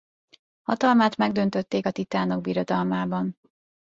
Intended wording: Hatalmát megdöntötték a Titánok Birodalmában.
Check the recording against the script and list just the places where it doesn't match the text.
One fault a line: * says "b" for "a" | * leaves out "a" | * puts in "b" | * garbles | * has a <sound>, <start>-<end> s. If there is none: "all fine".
all fine